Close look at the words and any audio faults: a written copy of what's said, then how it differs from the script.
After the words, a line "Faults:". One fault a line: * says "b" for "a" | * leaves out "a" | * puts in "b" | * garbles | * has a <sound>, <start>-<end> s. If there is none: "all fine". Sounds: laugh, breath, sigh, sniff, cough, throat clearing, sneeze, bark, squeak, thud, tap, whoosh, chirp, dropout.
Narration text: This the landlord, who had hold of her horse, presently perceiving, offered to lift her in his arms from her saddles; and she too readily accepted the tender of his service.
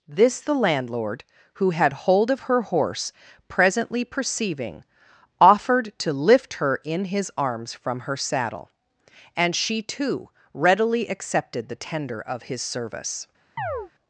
This the landlord, who had hold of her horse, presently perceiving, offered to lift her in his arms from her saddle; and she too readily accepted the tender of his service.
Faults:
* says "saddle" for "saddles"
* has a chirp, 13.6-13.9 s